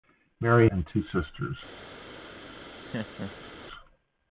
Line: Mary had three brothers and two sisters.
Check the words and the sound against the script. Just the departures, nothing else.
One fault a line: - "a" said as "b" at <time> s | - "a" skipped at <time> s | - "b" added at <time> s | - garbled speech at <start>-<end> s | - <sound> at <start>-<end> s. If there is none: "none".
- "had three brothers" skipped at 0.7 s
- laugh at 2.8-3.5 s